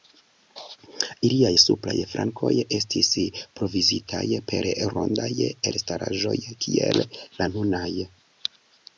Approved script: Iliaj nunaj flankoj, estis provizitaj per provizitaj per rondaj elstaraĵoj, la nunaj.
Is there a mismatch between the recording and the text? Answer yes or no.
yes